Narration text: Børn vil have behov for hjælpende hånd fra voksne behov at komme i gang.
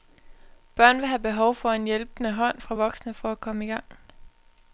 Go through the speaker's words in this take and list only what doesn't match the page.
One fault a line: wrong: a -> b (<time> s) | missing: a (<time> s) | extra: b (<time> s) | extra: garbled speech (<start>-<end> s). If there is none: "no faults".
extra: en (1.7 s)
wrong: behov -> for (3.1 s)